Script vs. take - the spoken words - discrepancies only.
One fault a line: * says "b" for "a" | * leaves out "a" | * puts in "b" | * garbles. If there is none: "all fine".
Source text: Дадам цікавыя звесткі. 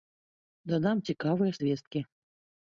all fine